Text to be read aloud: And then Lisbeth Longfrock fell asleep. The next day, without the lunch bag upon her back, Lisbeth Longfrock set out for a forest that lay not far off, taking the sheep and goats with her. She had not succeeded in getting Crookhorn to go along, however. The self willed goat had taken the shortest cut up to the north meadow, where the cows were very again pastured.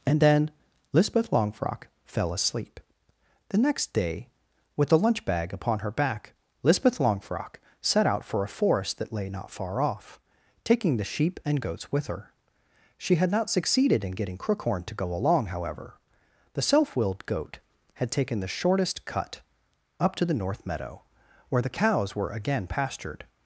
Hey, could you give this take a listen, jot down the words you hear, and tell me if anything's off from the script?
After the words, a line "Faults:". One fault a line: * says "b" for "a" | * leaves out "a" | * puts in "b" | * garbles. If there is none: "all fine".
And then Lisbeth Longfrock fell asleep. The next day, with the lunch bag upon her back, Lisbeth Longfrock set out for a forest that lay not far off, taking the sheep and goats with her. She had not succeeded in getting Crookhorn to go along, however. The self willed goat had taken the shortest cut up to the north meadow, where the cows were again pastured.
Faults:
* says "with" for "without"
* leaves out "very"